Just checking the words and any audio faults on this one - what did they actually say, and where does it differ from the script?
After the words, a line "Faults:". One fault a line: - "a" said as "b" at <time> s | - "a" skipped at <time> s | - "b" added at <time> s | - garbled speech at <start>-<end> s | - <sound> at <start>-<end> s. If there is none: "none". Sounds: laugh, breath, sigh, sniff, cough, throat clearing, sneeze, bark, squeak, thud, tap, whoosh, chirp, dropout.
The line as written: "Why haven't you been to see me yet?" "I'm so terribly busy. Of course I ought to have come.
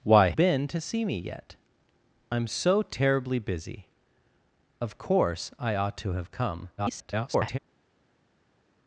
"Why been to see me yet?" "I'm so terribly busy. Of course I ought to have come. [garbled]
Faults:
- "haven't you" skipped at 0.3 s
- garbled speech at 6.8-7.6 s